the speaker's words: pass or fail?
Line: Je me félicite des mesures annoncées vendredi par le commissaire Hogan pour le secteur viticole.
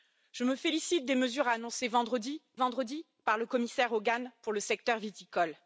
fail